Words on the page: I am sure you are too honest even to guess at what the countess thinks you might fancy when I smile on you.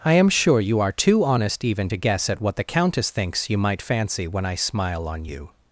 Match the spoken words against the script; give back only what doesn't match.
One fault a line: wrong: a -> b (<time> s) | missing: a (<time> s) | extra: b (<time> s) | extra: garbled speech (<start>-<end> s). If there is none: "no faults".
no faults